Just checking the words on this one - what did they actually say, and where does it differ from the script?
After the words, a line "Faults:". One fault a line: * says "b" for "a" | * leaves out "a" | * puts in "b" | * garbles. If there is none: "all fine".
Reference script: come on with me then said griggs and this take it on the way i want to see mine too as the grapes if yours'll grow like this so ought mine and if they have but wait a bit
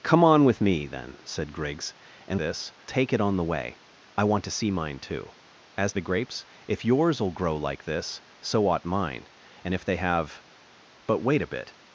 come on with me then said griggs and this take it on the way i want to see mine too as the grapes if yours'll grow like this so ought mine and if they have but wait a bit
Faults:
all fine